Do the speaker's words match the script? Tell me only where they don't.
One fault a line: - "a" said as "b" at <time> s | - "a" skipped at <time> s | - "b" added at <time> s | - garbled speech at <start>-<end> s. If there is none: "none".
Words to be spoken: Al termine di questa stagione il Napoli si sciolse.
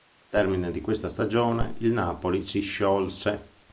none